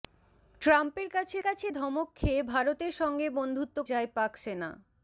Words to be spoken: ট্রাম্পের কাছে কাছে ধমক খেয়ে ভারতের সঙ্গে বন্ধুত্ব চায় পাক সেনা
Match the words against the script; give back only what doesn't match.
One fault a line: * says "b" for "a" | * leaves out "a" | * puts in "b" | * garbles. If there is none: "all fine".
all fine